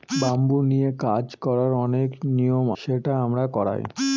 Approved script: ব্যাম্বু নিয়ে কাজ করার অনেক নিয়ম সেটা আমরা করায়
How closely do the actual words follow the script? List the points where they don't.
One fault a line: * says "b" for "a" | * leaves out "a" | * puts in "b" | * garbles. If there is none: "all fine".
all fine